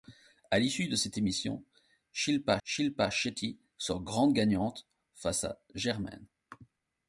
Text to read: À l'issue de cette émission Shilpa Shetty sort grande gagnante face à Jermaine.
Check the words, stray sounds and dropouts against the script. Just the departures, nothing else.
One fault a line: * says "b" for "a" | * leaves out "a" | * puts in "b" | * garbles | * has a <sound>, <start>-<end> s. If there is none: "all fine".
* puts in "Shilpa"